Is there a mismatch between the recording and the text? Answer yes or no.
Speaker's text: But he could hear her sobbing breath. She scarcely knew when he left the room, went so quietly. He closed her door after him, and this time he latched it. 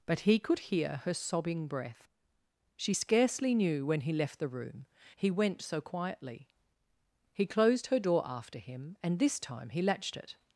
yes